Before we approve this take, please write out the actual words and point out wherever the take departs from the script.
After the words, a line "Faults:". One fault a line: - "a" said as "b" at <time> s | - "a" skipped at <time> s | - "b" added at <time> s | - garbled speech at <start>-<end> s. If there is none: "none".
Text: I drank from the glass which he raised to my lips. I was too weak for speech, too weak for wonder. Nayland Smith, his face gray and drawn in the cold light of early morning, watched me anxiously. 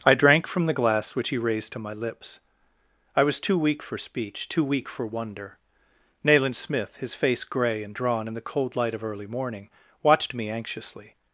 I drank from the glass which he raised to my lips. I was too weak for speech, too weak for wonder. Nayland Smith, his face gray and drawn in the cold light of early morning, watched me anxiously.
Faults:
none